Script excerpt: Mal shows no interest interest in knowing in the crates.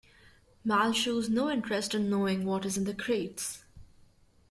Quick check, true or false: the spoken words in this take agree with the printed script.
false